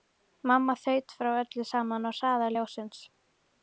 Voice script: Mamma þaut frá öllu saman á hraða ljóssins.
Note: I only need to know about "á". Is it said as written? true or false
true